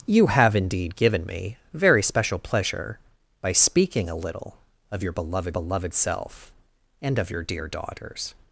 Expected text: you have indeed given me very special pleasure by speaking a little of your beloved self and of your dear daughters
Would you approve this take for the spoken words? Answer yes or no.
no